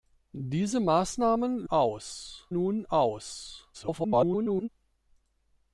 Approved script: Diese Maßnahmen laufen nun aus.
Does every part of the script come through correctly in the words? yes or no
no